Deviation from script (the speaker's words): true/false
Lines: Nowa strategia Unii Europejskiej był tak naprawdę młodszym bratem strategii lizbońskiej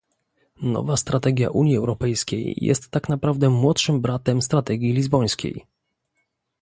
true